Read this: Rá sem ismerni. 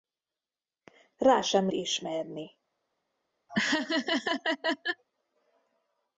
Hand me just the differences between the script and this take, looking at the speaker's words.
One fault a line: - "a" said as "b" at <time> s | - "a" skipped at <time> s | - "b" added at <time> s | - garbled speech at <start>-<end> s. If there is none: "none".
none